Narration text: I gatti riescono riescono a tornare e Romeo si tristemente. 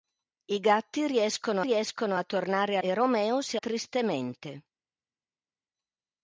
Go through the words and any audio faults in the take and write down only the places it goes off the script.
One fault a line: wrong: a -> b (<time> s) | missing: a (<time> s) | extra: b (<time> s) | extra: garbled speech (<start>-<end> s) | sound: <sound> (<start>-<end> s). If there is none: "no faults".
no faults